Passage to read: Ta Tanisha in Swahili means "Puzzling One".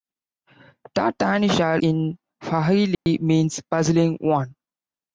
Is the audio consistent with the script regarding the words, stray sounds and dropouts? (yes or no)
no